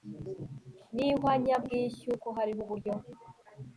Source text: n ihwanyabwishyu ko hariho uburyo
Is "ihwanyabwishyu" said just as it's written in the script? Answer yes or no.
yes